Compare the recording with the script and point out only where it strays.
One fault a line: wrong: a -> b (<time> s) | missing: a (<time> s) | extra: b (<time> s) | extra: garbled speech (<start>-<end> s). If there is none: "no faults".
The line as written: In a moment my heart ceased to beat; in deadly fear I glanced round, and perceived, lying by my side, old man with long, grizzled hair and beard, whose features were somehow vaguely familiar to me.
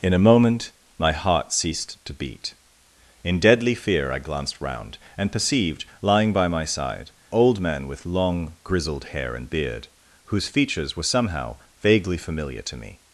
no faults